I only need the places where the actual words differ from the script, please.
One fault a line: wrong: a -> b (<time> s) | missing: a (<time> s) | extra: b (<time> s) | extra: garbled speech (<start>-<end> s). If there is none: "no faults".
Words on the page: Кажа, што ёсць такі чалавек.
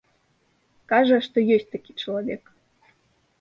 no faults